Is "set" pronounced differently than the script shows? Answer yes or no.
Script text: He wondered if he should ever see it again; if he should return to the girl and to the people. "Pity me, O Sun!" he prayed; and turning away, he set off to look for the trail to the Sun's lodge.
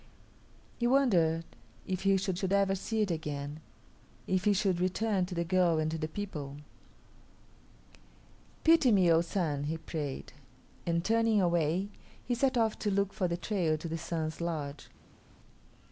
no